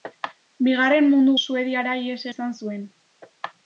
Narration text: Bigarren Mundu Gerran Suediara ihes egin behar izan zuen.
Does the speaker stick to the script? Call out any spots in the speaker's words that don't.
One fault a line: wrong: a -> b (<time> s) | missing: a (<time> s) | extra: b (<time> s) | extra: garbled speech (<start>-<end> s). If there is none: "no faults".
missing: Gerran (1.4 s)
missing: egin behar (2.2 s)